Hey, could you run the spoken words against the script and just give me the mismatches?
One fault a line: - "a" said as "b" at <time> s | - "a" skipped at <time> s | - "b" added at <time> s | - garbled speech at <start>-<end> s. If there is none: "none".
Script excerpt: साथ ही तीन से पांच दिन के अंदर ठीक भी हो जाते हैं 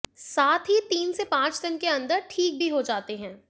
none